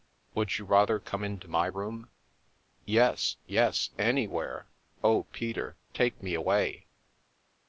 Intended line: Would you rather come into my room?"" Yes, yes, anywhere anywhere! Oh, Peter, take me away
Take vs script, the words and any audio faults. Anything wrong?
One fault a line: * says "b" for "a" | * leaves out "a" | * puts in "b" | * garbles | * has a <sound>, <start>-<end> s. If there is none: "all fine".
* leaves out "anywhere"